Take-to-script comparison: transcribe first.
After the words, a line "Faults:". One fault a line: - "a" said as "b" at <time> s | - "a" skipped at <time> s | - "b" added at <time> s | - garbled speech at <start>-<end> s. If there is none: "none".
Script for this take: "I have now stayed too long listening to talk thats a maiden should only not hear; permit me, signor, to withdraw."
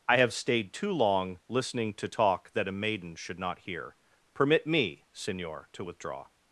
"I have stayed too long listening to talk that a maiden should not hear; permit me, signor, to withdraw."
Faults:
- "now" skipped at 0.3 s
- "thats" said as "that" at 2.5 s
- "only" skipped at 3.4 s